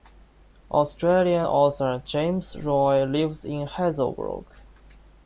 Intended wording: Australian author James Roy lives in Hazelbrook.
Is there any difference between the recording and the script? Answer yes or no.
no